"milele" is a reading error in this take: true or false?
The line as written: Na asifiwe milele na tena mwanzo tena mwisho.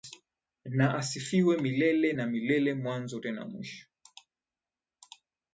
false